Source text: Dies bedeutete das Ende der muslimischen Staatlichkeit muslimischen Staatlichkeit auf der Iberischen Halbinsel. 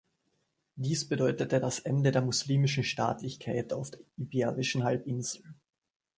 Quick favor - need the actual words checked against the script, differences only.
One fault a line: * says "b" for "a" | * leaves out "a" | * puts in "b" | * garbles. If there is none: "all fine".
* leaves out "muslimischen Staatlichkeit"